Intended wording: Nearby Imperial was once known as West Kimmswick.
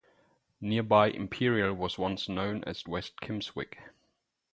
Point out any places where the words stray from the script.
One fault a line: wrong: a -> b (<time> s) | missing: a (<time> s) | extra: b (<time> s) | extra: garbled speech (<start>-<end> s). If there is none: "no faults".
no faults